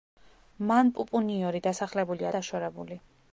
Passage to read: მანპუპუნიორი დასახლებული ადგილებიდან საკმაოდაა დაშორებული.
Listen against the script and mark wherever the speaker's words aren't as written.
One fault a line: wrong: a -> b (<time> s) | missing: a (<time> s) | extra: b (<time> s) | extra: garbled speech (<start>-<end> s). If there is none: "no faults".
missing: ადგილებიდან საკმაოდაა (2.3 s)